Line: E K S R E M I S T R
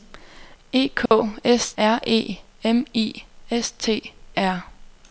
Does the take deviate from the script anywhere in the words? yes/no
no